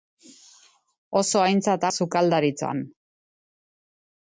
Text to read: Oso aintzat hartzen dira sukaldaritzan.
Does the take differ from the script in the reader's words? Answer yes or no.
yes